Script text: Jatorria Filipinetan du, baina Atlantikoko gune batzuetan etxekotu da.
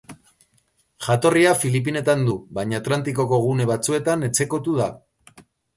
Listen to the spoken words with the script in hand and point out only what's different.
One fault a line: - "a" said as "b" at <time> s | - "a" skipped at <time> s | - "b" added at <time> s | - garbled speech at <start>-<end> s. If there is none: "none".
none